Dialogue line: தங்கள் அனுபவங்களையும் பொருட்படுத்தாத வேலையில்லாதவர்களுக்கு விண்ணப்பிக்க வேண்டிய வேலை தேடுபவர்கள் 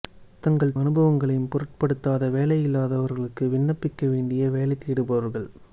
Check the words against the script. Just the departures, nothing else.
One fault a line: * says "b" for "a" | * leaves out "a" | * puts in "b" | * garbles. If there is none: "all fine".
all fine